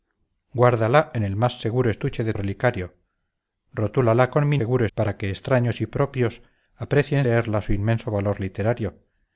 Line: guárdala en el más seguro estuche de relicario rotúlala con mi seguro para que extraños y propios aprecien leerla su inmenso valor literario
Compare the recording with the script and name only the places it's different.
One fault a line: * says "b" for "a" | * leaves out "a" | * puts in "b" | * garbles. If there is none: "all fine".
all fine